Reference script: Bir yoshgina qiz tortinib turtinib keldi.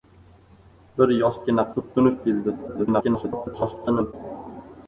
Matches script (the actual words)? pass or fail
fail